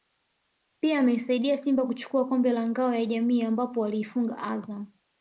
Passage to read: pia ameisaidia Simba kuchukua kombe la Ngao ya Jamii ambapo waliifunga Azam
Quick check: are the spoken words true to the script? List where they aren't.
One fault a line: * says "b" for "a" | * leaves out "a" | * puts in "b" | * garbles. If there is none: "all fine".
all fine